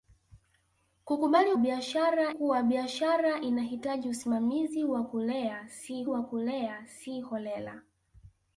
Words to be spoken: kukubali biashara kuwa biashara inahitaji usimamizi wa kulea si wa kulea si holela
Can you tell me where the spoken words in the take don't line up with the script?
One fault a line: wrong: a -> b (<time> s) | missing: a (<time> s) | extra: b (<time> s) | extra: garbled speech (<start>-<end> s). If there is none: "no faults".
no faults